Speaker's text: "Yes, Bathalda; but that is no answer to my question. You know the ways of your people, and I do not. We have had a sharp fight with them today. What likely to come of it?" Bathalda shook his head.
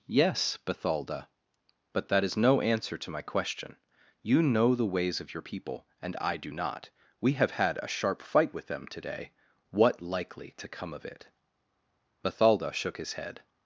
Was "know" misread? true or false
false